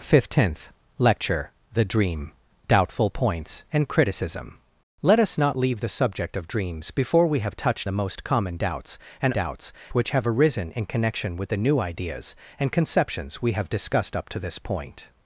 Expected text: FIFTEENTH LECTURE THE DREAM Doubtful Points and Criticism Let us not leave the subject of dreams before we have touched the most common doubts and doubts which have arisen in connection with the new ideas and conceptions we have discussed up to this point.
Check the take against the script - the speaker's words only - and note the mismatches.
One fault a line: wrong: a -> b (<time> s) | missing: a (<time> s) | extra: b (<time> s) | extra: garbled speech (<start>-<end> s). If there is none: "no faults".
no faults